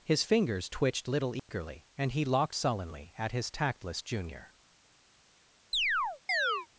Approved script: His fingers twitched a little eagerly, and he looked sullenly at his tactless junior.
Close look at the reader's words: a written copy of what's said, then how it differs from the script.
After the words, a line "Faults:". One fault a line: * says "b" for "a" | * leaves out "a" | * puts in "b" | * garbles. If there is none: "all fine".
His fingers twitched little eagerly, and he locked sullenly at his tactless junior.
Faults:
* leaves out "a"
* says "locked" for "looked"